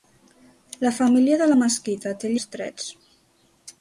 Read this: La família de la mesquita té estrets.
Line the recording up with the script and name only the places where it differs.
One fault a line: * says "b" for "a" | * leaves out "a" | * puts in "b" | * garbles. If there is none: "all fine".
all fine